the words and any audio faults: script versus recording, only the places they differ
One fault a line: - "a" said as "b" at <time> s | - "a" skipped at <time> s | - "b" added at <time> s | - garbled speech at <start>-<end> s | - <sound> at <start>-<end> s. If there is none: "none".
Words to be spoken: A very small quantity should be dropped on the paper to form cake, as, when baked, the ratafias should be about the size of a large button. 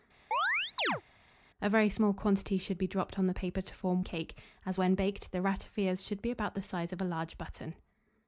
- chirp at 0.3-1.0 s